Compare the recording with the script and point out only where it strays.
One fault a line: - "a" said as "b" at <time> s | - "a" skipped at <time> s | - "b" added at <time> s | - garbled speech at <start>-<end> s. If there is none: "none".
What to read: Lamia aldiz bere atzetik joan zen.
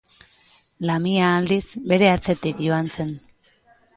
none